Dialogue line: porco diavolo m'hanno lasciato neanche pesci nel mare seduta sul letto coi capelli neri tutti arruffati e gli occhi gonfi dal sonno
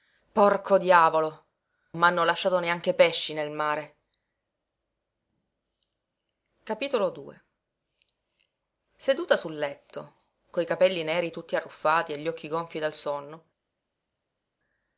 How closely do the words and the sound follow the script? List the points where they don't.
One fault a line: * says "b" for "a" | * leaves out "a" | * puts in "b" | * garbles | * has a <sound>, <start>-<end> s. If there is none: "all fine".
all fine